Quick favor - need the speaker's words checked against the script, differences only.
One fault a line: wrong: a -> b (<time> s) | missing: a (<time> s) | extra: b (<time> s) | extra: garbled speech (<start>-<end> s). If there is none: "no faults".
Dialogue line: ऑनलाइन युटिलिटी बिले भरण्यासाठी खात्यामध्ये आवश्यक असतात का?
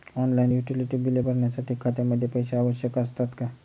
extra: पैसे (2.3 s)